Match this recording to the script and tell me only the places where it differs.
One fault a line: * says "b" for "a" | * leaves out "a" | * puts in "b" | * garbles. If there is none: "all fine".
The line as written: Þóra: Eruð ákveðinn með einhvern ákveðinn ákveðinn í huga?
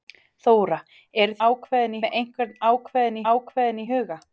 all fine